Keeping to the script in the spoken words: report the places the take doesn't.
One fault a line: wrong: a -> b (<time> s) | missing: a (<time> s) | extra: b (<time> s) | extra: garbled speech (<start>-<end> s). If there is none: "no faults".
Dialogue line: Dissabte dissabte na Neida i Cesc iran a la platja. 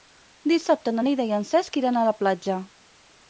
missing: dissabte (0.9 s)
extra: en (1.4 s)